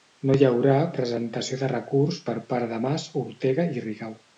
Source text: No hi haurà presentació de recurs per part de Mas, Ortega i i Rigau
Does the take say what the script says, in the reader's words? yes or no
no